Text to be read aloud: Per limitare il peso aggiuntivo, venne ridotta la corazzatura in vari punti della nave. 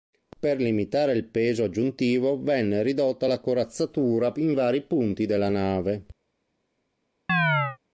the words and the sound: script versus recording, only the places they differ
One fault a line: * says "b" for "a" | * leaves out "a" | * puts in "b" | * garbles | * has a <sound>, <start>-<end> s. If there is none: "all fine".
* has a chirp, 7.3-7.8 s